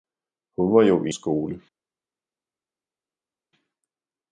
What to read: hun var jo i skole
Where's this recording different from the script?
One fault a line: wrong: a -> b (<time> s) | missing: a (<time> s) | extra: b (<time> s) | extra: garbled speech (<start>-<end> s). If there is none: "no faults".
no faults